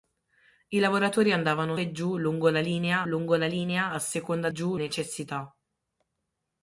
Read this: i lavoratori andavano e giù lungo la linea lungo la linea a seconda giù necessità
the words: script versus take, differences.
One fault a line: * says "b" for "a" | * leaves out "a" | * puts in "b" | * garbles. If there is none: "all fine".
all fine